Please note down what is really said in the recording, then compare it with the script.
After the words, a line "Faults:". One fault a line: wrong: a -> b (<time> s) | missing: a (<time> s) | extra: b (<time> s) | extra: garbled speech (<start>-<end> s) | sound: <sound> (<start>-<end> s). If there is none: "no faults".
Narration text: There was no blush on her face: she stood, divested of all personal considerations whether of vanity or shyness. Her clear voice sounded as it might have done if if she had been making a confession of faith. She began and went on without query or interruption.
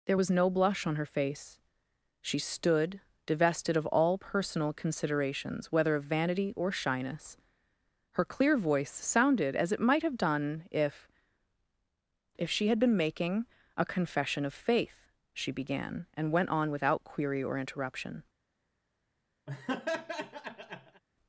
There was no blush on her face: she stood, divested of all personal considerations whether of vanity or shyness. Her clear voice sounded as it might have done if if she had been making a confession of faith. She began and went on without query or interruption.
Faults:
sound: laugh (19.5-21.0 s)